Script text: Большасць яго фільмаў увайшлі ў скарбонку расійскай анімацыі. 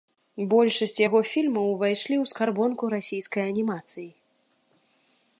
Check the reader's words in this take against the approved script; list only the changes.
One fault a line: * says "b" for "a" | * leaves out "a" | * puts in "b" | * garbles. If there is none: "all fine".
all fine